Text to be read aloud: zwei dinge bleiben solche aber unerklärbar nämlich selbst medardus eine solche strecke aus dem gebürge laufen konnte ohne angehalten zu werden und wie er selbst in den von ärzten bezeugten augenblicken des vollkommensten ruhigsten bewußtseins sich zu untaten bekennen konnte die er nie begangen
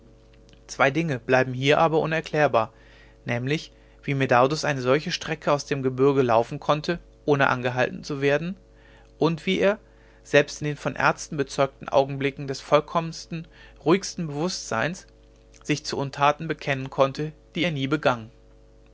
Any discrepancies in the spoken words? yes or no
yes